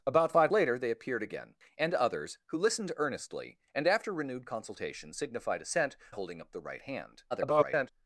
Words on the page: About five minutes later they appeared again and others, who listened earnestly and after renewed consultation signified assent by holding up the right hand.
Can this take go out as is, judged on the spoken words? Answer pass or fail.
fail